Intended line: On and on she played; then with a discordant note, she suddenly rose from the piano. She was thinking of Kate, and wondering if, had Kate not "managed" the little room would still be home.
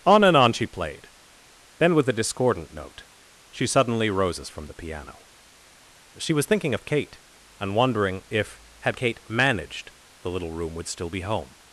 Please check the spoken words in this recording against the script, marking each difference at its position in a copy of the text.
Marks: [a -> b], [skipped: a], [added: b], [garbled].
On and on she played; then with a discordant note, she suddenly [rose -> roses] from the piano. She was thinking of Kate, and wondering if, had Kate [skipped: not] "managed" the little room would still be home.